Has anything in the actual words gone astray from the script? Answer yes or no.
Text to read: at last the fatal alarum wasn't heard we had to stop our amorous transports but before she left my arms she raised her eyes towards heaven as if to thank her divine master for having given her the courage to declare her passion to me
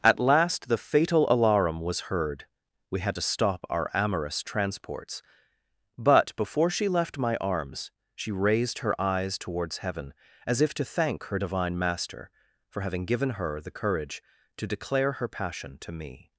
yes